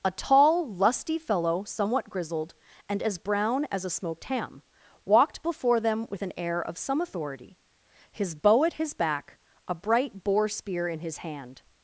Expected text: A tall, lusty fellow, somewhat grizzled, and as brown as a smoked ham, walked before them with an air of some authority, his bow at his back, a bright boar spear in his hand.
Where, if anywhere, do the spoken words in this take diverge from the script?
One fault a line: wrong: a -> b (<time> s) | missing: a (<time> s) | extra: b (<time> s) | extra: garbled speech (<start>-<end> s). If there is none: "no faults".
no faults